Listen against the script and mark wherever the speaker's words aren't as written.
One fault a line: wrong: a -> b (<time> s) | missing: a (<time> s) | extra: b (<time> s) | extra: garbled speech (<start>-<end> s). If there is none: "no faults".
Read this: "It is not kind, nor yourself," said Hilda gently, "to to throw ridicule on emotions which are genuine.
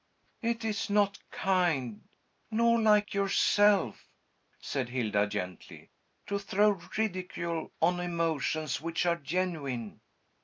extra: like (2.8 s)
missing: to (6.4 s)